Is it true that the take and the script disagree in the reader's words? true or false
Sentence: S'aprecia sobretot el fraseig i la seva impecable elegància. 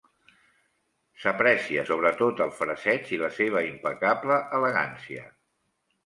false